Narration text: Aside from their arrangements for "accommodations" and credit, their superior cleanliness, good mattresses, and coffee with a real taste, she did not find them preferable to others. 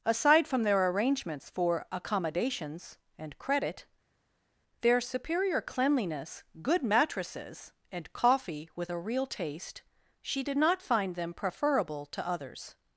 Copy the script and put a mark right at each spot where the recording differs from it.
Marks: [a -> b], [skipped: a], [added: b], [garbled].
Aside from their arrangements for "accommodations" and credit, their superior cleanliness, good mattresses, and coffee with a real taste, she did not find them preferable to others.